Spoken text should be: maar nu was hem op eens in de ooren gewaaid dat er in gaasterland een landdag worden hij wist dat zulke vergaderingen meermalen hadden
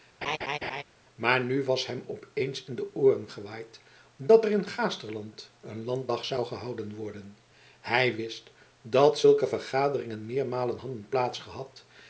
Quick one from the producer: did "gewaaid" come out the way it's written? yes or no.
yes